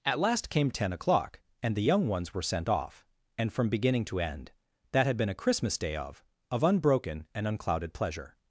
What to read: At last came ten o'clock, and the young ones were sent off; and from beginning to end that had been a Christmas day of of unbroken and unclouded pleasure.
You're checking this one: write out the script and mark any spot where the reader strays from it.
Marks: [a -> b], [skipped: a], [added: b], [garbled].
At last came ten o'clock, and the young ones were sent off; and from beginning to end that had been a Christmas day of of unbroken and unclouded pleasure.